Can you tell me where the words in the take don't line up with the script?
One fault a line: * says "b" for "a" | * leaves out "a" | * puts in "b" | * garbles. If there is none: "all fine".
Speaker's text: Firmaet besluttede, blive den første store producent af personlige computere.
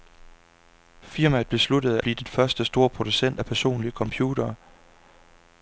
all fine